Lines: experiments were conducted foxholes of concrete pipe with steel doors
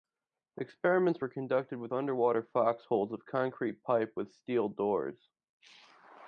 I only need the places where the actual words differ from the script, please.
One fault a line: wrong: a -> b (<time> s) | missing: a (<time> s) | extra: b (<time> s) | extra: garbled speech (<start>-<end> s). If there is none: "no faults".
extra: with underwater (1.8 s)